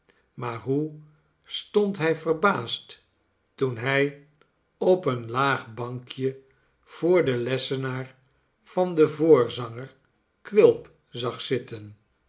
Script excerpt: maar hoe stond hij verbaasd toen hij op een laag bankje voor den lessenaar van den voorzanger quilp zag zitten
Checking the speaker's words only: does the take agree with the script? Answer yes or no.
yes